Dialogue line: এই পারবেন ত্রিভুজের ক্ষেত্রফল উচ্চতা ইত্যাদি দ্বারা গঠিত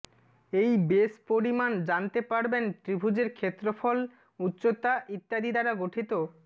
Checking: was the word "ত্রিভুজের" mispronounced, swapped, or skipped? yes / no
no